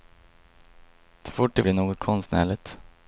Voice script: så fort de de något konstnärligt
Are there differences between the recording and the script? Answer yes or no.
no